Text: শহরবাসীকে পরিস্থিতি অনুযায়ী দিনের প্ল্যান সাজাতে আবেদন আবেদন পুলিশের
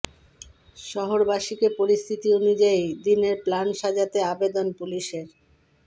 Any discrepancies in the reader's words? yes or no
yes